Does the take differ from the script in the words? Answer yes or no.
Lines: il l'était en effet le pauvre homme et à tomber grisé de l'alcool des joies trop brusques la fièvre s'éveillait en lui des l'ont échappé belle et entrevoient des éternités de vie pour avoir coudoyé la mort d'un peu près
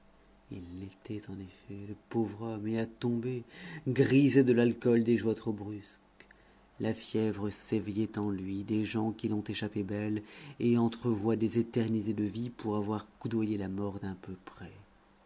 yes